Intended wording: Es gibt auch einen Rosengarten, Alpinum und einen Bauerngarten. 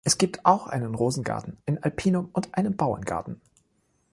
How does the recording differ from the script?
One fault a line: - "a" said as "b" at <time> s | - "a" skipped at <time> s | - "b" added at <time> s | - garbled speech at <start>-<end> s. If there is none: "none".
- "ein" added at 1.6 s